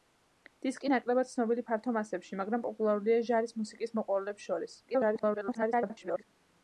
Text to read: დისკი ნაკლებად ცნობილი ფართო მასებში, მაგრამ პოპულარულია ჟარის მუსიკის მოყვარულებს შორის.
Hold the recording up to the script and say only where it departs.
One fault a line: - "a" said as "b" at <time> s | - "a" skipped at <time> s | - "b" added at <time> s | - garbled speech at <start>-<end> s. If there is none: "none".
- garbled speech at 4.9-6.2 s